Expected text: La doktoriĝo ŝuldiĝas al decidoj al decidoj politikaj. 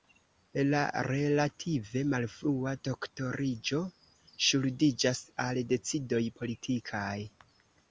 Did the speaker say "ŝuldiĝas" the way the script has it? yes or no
yes